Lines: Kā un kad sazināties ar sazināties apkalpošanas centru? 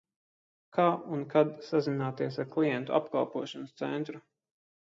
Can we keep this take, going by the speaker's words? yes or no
no